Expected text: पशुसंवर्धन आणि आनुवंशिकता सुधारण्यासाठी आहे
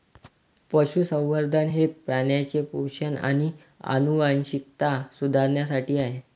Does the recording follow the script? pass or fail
fail